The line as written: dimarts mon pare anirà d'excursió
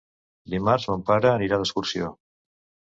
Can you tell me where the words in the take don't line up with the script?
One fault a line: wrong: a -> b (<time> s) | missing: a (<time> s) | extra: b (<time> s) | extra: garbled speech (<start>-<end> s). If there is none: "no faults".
no faults